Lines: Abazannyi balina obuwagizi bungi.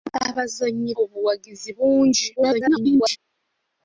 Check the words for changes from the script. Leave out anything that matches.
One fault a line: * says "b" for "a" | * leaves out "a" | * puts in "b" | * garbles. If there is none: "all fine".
* leaves out "balina"
* garbles